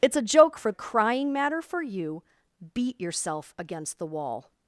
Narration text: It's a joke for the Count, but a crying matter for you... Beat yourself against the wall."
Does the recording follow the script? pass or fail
fail